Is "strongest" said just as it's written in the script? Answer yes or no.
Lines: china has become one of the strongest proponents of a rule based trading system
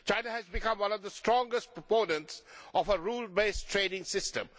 yes